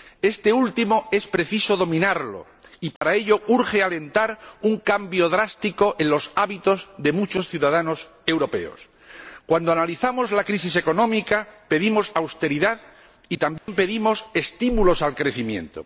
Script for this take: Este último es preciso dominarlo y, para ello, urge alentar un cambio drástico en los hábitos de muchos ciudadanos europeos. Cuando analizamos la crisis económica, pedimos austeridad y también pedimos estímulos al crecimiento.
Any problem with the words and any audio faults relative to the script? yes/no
yes